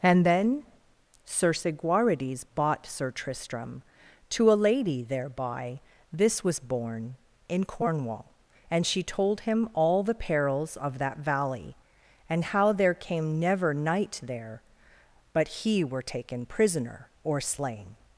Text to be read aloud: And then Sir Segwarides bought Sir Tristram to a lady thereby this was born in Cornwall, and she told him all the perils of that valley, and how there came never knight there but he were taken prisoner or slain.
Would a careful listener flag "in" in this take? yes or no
no